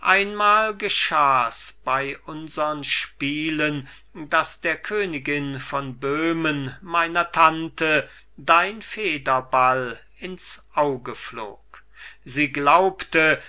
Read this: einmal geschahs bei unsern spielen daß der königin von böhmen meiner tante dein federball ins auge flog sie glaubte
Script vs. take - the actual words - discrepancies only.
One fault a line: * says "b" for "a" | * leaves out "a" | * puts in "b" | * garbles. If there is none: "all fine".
all fine